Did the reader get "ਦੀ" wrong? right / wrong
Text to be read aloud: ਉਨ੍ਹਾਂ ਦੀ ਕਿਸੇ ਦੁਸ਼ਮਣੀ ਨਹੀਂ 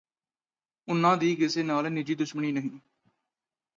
right